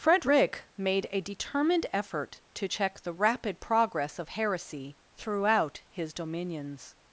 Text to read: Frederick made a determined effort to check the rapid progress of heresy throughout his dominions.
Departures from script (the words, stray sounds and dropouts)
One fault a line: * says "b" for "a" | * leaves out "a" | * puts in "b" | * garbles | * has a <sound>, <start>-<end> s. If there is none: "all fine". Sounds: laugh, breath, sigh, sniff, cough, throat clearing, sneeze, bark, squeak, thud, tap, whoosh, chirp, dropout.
all fine